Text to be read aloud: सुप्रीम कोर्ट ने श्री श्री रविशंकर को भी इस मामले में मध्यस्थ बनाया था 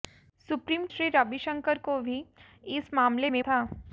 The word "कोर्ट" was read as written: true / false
false